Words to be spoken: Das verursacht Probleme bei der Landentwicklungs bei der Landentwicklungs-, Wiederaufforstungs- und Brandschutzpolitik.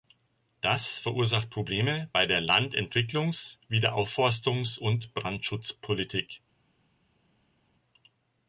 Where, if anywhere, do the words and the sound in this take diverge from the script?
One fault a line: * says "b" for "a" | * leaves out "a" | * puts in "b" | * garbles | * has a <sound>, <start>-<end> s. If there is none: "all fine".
* leaves out "bei der Landentwicklungs"